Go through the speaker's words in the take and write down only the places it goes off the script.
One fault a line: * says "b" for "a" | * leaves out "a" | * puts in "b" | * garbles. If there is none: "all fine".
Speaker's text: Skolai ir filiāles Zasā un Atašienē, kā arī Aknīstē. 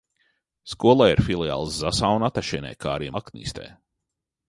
all fine